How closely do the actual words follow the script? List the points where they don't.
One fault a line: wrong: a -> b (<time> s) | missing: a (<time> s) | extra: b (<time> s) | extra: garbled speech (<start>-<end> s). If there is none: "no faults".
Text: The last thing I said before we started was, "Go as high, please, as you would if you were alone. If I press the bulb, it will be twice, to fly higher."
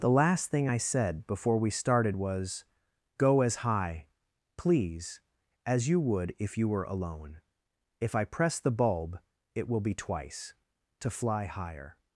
no faults